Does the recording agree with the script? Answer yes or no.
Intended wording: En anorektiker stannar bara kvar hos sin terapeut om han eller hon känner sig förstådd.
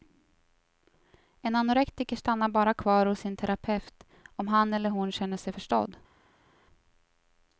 yes